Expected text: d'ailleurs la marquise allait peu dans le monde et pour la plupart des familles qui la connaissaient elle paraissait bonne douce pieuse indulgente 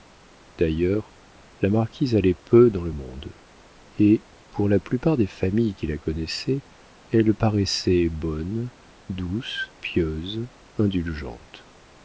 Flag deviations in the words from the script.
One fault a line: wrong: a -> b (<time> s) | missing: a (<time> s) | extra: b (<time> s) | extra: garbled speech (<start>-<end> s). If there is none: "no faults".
no faults